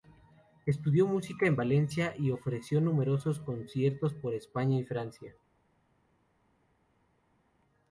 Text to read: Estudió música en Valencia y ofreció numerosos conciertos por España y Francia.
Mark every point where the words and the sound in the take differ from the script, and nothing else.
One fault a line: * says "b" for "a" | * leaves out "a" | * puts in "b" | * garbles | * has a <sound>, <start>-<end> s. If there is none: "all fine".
all fine